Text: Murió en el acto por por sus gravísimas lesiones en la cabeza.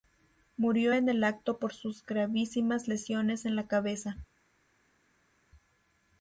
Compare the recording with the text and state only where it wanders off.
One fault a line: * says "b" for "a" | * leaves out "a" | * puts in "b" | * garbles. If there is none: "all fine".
* leaves out "por"